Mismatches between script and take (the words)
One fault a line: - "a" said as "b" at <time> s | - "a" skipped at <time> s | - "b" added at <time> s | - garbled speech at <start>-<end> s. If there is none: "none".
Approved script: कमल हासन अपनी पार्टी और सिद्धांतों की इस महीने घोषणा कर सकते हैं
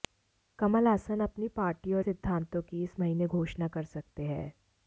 none